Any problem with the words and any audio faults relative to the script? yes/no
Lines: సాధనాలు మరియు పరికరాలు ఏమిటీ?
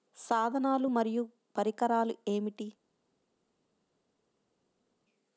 no